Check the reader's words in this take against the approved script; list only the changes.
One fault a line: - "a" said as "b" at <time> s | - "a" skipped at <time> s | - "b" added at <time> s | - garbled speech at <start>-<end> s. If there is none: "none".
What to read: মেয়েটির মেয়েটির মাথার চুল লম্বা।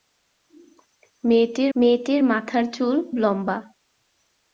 none